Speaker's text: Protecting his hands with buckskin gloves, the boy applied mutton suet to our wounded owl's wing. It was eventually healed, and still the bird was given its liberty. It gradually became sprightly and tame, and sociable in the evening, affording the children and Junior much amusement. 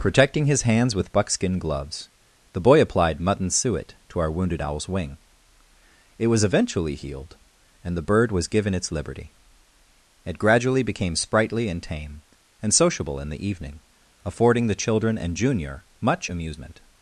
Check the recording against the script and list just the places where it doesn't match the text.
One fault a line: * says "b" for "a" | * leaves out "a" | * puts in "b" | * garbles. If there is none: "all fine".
* leaves out "still"